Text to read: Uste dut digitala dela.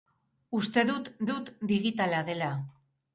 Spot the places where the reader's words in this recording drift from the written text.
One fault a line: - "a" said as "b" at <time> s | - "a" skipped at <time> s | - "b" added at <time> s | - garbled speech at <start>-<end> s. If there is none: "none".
- "dut" added at 1.3 s